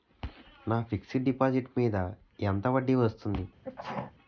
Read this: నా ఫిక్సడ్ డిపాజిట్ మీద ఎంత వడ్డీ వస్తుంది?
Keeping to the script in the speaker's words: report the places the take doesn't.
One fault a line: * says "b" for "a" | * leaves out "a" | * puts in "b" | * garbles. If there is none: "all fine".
all fine